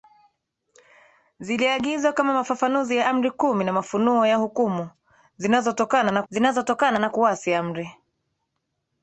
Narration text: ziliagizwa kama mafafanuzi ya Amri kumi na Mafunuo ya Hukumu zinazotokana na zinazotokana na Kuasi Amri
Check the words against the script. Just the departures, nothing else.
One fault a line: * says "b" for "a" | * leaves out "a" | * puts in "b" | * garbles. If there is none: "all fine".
all fine